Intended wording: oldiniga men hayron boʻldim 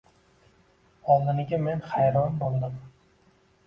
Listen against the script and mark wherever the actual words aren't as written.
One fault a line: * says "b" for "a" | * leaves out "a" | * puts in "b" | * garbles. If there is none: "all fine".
all fine